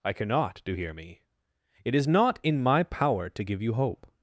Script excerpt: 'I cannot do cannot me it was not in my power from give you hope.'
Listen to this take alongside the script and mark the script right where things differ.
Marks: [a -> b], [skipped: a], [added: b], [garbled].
'I cannot do [cannot -> hear] me it [was -> is] not in my power [from -> to] give you hope.'